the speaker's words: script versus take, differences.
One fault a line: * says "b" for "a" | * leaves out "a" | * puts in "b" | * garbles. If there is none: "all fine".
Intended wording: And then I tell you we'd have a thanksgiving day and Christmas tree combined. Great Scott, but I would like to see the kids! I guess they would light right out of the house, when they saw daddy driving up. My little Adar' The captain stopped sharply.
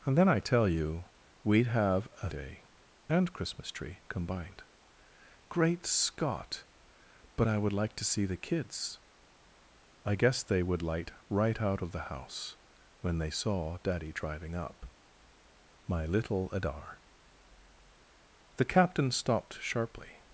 * leaves out "thanksgiving"